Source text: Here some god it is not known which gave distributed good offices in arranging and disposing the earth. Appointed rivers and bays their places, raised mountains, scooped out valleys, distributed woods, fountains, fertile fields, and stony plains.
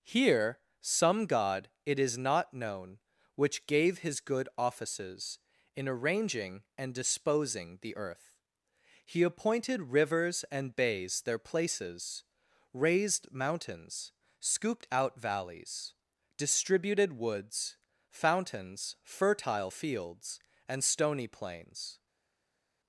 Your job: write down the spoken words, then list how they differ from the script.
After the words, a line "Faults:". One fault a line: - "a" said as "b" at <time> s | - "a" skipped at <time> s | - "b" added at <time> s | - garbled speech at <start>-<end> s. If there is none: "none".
Here some god it is not known which gave his good offices in arranging and disposing the earth. He appointed rivers and bays their places, raised mountains, scooped out valleys, distributed woods, fountains, fertile fields, and stony plains.
Faults:
- "distributed" said as "his" at 4.0 s
- "He" added at 9.1 s